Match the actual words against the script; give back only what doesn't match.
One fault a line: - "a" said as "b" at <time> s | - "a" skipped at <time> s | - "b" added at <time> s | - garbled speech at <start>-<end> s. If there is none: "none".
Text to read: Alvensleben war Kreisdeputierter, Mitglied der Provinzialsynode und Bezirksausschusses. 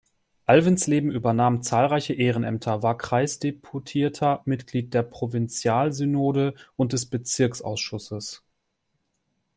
- "übernahm zahlreiche Ehrenämter" added at 1.1 s
- "des" added at 6.9 s